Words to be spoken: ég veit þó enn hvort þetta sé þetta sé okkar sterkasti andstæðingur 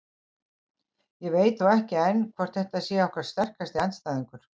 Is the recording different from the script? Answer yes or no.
yes